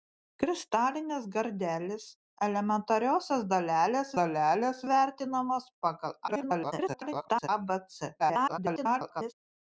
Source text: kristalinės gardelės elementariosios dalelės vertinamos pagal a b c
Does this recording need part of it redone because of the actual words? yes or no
yes